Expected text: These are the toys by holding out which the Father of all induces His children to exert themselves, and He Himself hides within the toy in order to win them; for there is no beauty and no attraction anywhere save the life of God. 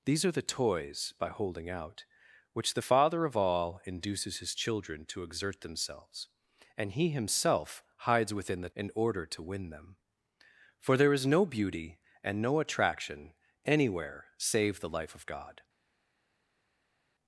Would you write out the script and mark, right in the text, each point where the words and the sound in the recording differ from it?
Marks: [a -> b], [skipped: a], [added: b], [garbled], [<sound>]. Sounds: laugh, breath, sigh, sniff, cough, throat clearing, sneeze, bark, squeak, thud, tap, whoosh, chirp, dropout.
These are the toys by holding out which the Father of all induces His children to exert themselves, and He Himself hides within the [skipped: toy] in order to win them; for there is no beauty and no attraction anywhere save the life of God.